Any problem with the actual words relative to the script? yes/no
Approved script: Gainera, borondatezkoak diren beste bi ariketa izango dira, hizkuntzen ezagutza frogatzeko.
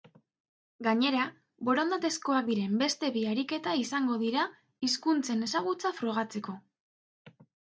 no